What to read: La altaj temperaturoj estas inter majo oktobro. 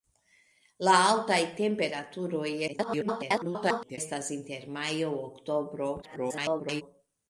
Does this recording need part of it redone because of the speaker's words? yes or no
yes